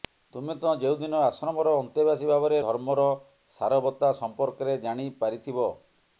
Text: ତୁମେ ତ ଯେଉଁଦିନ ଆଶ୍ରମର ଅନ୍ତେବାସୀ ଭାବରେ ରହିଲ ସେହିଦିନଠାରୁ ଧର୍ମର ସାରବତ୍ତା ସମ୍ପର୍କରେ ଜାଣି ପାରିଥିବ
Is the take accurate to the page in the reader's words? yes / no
no